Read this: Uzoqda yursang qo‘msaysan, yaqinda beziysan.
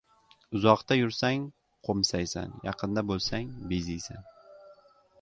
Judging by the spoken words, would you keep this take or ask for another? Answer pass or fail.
fail